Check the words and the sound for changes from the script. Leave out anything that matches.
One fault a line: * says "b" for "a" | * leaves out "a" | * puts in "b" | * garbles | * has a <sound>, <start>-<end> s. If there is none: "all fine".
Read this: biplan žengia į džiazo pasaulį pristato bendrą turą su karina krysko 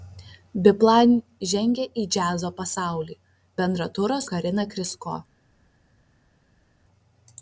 * leaves out "pristato"
* leaves out "su"